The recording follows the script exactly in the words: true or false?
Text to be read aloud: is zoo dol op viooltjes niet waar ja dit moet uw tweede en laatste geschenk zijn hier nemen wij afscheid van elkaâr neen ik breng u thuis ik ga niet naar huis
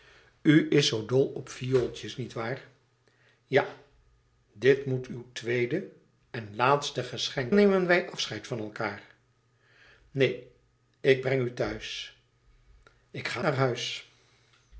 false